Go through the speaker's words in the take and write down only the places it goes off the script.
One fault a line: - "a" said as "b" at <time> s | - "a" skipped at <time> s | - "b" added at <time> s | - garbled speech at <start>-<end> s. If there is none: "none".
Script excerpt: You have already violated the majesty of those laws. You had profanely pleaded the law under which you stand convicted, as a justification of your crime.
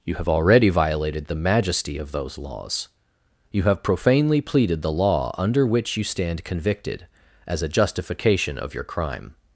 - "had" said as "have" at 3.6 s